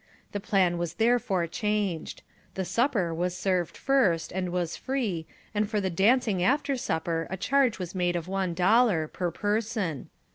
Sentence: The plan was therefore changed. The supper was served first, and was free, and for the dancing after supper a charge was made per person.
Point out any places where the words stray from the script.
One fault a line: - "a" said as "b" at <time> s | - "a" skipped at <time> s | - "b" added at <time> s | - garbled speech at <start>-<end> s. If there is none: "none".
- "of one dollar" added at 8.2 s